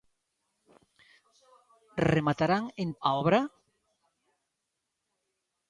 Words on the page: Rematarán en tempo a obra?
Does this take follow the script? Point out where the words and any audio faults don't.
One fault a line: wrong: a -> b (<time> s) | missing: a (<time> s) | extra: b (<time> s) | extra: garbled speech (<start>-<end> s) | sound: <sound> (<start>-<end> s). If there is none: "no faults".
missing: tempo (2.9 s)